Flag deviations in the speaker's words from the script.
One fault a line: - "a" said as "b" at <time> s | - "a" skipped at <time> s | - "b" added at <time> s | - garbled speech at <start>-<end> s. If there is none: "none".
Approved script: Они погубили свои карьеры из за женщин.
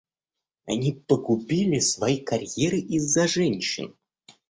none